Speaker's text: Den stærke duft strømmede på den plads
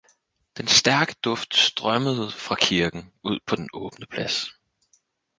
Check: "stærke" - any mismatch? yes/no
no